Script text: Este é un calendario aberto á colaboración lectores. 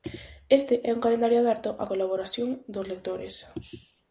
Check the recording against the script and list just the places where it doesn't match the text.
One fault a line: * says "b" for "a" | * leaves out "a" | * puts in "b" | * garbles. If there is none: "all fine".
* puts in "dos"